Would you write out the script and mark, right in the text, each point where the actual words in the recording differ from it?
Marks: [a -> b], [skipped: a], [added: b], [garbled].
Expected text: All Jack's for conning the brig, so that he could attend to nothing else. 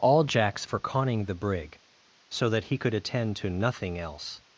All Jack's for conning the brig, so that he could attend to nothing else.